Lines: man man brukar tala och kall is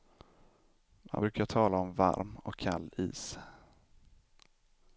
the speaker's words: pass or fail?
fail